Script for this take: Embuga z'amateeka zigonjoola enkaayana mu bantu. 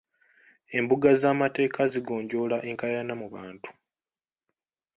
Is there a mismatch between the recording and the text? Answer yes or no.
no